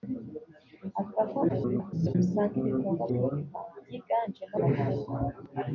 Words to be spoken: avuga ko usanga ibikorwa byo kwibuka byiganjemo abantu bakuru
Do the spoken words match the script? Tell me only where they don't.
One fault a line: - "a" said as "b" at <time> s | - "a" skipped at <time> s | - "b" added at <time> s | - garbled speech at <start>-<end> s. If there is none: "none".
- garbled speech at 1.5-2.2 s
- "byo" skipped at 3.0 s
- "abantu" skipped at 4.6 s